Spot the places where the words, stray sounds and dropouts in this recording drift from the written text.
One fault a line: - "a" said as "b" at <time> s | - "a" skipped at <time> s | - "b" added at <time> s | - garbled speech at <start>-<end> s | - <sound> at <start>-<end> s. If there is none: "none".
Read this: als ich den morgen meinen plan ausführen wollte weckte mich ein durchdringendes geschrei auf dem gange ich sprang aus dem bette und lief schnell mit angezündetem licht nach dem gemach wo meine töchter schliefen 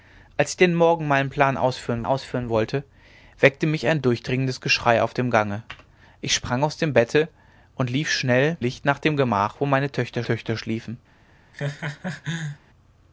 - "ausführen" added at 2.0 s
- "mit angezündetem" skipped at 8.6 s
- "töchter" added at 10.2 s
- laugh at 11.5-12.6 s